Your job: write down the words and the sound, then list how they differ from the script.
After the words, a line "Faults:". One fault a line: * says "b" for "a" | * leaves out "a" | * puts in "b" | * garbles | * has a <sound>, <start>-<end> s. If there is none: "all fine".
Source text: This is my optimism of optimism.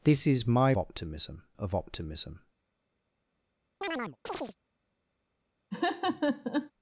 This is my optimism of optimism.
Faults:
* has a chirp, 3.8-4.6 s
* has a laugh, 5.7-6.7 s